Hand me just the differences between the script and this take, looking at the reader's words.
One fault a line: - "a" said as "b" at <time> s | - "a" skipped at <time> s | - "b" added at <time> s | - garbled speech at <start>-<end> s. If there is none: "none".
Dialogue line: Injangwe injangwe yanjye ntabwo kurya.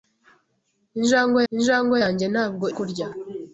none